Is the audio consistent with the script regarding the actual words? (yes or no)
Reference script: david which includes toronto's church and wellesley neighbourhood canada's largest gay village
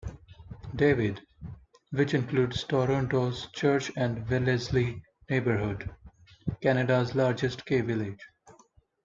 yes